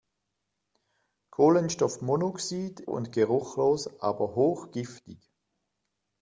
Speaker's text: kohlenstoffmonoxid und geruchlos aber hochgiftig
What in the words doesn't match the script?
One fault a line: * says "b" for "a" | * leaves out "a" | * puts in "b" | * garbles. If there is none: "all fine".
all fine